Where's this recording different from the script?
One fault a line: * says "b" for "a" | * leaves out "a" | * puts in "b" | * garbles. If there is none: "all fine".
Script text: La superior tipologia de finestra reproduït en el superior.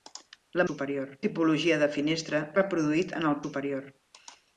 all fine